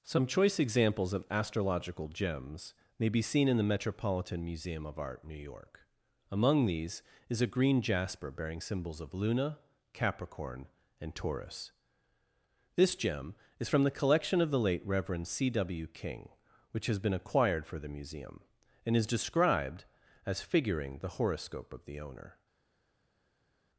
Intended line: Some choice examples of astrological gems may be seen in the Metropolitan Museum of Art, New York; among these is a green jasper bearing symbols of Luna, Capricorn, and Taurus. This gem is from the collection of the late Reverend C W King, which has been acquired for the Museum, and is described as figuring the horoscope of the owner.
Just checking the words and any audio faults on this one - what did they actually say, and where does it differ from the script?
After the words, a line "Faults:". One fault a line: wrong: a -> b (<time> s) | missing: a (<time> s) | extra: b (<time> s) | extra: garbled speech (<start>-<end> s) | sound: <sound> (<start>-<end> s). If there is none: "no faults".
Some choice examples of astrological gems may be seen in the Metropolitan Museum of Art, New York; among these is a green jasper bearing symbols of Luna, Capricorn, and Taurus. This gem is from the collection of the late Reverend C W King, which has been acquired for the Museum, and is described as figuring the horoscope of the owner.
Faults:
no faults